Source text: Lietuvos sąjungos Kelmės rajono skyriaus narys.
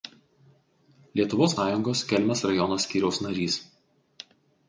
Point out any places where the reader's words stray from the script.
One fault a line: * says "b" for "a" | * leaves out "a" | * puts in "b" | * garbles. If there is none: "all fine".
all fine